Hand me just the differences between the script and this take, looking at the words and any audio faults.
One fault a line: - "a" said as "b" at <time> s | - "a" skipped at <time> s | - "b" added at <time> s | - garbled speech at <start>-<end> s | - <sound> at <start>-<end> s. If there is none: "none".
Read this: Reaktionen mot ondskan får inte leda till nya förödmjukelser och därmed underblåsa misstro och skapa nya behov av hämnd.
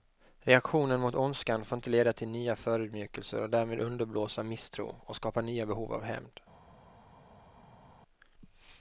none